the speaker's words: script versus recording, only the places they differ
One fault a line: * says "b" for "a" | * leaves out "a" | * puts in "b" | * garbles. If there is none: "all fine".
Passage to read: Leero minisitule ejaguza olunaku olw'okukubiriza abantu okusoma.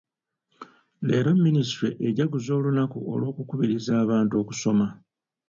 all fine